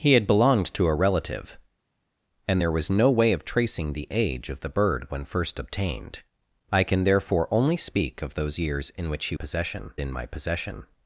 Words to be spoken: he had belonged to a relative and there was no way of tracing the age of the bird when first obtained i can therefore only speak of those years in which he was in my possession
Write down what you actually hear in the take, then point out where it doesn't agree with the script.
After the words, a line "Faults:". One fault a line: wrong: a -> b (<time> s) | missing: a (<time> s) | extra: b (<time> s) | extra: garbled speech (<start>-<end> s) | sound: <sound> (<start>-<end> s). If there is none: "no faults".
he had belonged to a relative and there was no way of tracing the age of the bird when first obtained i can therefore only speak of those years in which he possession in my possession
Faults:
wrong: was -> possession (9.3 s)